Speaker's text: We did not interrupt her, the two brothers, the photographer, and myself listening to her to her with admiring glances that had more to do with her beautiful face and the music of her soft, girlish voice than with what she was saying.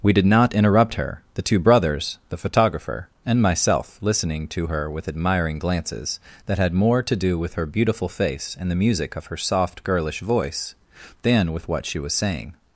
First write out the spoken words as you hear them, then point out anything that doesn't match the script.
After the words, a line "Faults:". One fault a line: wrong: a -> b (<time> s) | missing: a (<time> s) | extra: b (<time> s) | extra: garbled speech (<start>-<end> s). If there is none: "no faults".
We did not interrupt her, the two brothers, the photographer, and myself listening to her with admiring glances that had more to do with her beautiful face and the music of her soft, girlish voice than with what she was saying.
Faults:
missing: to her (4.9 s)